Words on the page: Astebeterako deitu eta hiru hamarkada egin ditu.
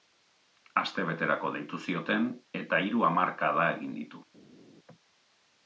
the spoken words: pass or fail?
fail